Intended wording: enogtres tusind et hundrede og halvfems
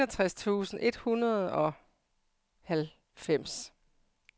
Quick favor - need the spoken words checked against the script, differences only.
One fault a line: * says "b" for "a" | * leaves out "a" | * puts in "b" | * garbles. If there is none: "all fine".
all fine